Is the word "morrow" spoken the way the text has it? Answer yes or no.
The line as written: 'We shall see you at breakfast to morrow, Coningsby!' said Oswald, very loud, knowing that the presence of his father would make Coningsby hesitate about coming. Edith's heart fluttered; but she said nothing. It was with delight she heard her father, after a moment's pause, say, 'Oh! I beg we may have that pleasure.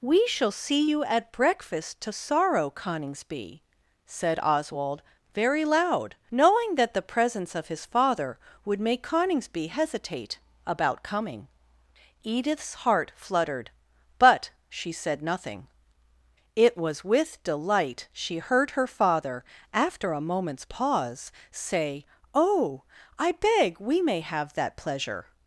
no